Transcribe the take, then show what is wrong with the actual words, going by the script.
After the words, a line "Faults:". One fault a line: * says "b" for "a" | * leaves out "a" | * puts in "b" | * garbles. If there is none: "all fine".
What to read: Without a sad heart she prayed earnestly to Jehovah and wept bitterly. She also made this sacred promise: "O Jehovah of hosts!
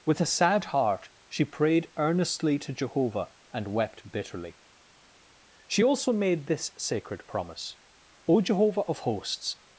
With a sad heart she prayed earnestly to Jehovah and wept bitterly. She also made this sacred promise: "O Jehovah of hosts!
Faults:
* says "With" for "Without"